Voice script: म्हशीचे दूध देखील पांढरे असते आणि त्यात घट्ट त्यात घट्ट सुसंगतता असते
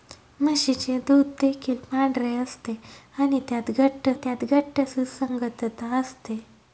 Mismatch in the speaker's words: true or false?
false